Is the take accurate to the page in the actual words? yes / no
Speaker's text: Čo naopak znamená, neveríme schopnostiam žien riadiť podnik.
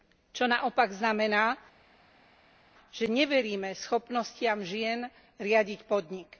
no